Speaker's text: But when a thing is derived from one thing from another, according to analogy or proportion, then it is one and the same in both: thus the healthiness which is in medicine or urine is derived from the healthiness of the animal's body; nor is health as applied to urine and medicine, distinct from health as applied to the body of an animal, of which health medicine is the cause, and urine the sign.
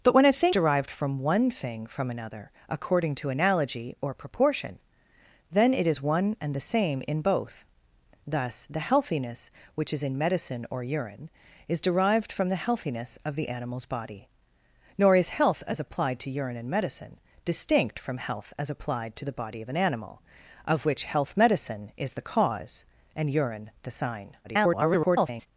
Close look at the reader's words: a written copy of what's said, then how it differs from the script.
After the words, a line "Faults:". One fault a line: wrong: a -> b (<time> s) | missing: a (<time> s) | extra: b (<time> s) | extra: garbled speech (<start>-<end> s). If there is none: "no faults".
But when a thing derived from one thing from another, according to analogy or proportion, then it is one and the same in both: thus the healthiness which is in medicine or urine is derived from the healthiness of the animal's body; nor is health as applied to urine and medicine, distinct from health as applied to the body of an animal, of which health medicine is the cause, and urine the sign. [garbled]
Faults:
missing: is (0.6 s)
extra: garbled speech (24.4-25.5 s)